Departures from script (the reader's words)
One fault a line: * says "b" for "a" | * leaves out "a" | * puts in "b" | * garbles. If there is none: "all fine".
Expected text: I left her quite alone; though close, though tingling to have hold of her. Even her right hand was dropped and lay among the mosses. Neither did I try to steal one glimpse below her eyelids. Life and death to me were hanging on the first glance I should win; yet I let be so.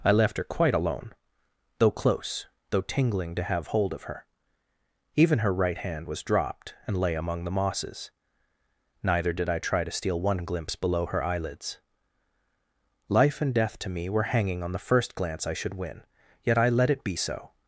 * puts in "it"